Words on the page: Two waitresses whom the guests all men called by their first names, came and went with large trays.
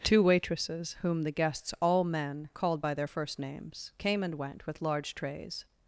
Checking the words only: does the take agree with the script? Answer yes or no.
yes